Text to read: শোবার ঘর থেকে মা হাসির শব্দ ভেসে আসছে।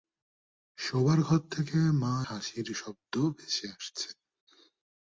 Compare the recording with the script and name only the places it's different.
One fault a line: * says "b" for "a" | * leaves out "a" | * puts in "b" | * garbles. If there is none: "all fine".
all fine